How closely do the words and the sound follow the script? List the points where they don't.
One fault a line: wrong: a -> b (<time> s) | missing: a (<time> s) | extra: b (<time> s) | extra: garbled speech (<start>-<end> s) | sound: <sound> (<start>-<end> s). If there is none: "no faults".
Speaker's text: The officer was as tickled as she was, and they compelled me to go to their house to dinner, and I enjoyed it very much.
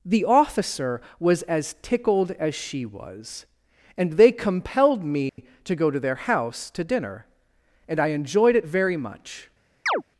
sound: dropout (5.3-5.4 s)
sound: chirp (9.9-10.0 s)